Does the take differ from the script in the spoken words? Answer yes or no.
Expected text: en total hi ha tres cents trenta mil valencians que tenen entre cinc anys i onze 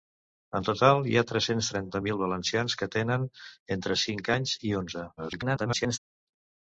yes